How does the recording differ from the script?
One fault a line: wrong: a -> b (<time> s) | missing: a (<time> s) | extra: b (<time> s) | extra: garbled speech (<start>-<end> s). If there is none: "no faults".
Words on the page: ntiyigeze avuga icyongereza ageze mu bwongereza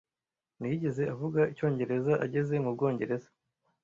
no faults